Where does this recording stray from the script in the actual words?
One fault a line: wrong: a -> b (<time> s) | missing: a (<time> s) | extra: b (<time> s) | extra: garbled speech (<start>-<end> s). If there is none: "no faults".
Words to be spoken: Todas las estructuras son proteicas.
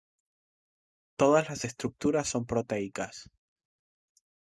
no faults